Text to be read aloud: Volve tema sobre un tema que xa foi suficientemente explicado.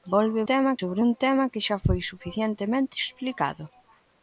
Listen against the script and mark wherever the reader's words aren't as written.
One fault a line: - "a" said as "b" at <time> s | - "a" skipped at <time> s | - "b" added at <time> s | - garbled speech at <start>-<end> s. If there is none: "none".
none